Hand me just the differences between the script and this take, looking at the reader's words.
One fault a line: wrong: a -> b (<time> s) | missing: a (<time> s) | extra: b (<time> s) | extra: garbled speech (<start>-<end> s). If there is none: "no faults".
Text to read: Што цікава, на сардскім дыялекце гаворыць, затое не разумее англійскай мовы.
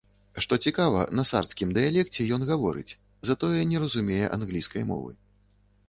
extra: ён (2.4 s)